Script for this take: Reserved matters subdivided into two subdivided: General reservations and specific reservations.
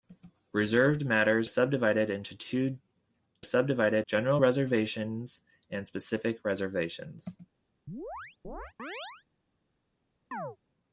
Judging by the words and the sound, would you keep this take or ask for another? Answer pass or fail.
fail